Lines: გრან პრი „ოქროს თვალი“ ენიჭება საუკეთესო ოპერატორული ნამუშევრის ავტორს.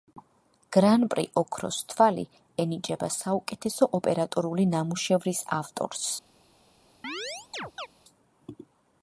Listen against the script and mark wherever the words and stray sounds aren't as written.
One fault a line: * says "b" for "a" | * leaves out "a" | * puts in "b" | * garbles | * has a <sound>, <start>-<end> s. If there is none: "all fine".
* has a chirp, 7.0-7.9 s